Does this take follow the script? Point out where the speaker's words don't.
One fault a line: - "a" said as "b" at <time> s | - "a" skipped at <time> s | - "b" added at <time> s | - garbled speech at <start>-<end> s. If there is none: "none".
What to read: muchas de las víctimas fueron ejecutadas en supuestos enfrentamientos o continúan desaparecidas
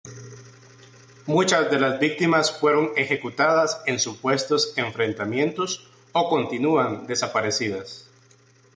none